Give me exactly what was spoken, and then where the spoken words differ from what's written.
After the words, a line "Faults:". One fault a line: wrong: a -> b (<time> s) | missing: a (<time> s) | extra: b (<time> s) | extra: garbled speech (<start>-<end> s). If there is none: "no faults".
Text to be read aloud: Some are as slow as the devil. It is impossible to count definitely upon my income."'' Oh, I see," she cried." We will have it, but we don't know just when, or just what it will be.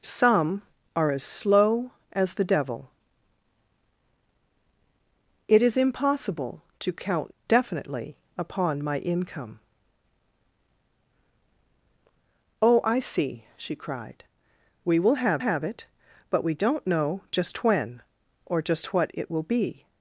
Some are as slow as the devil. It is impossible to count definitely upon my income."'' Oh, I see," she cried." We will have have it, but we don't know just when, or just what it will be.
Faults:
extra: have (15.4 s)